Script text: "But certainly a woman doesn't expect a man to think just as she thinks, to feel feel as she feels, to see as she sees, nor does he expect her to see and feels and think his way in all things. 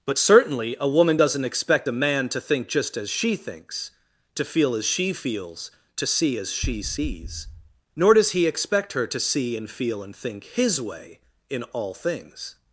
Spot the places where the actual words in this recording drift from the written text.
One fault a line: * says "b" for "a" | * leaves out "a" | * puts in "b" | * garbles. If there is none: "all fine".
* leaves out "feel"
* says "feel" for "feels"